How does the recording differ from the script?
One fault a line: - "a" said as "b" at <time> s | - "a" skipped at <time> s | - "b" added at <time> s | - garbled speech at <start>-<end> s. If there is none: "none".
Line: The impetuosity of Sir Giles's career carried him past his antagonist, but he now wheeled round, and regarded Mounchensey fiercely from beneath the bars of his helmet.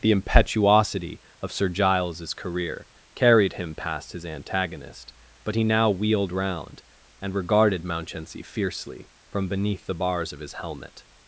none